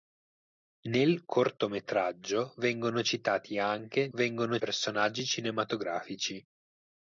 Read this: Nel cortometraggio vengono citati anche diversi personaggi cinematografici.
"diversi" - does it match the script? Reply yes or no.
no